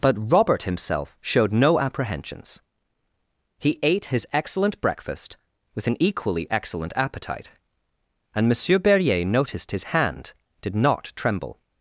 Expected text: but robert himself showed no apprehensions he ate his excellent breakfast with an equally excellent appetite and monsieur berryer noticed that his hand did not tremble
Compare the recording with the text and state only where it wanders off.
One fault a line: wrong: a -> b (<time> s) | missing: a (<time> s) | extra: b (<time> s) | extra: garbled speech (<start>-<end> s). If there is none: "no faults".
missing: that (9.7 s)